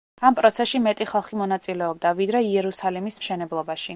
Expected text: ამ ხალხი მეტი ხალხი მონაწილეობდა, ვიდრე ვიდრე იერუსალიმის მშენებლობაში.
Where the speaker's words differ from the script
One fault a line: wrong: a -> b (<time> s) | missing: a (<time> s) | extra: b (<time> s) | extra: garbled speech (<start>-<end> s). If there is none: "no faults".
wrong: ხალხი -> პროცესში (0.4 s)
missing: ვიდრე (2.4 s)